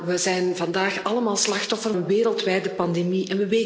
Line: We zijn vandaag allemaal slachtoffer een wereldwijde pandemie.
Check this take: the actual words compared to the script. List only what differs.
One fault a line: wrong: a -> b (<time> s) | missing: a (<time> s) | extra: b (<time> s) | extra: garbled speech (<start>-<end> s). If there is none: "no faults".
no faults